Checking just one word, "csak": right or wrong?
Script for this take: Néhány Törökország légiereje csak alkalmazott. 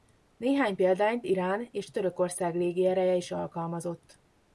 wrong